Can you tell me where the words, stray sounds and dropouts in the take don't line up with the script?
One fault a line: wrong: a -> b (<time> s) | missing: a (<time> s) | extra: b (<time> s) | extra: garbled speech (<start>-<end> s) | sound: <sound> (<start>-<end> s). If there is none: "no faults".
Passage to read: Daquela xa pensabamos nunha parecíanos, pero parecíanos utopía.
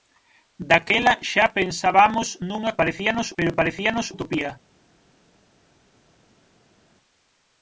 no faults